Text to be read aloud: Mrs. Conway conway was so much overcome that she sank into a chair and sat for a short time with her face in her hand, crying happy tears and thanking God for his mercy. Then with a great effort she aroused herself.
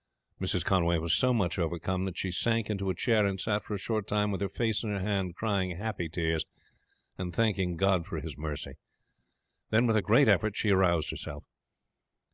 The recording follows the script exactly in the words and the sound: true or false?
false